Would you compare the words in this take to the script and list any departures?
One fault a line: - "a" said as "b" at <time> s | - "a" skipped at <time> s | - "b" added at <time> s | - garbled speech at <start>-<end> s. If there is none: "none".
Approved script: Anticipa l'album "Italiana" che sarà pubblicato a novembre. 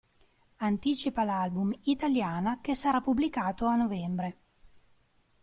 none